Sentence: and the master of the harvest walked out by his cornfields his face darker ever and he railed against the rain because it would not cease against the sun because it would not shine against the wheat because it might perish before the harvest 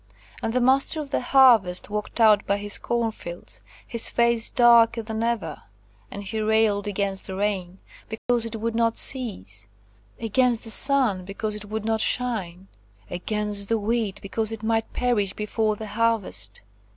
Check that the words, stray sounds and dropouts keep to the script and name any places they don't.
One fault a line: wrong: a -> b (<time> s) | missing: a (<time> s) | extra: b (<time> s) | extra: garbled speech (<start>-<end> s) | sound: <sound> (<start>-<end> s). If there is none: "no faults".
extra: than (5.0 s)
sound: dropout (8.2-8.3 s)